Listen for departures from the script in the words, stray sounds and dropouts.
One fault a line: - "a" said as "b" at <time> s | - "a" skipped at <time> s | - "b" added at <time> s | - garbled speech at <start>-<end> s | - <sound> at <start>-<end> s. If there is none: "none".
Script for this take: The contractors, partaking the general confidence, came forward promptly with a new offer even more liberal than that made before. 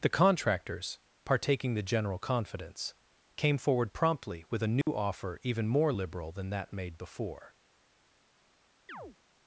- dropout at 4.8-4.9 s
- chirp at 8.9-9.2 s